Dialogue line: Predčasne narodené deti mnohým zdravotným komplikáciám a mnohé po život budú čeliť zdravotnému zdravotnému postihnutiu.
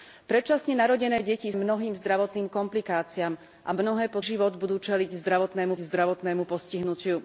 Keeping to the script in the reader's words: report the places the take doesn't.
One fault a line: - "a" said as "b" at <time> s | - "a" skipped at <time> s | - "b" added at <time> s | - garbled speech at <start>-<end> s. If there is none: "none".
none